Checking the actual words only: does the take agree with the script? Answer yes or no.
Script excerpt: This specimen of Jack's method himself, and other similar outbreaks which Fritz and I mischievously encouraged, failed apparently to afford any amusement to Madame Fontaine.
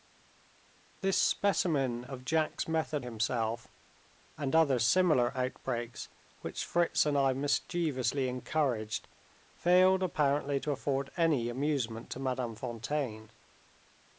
yes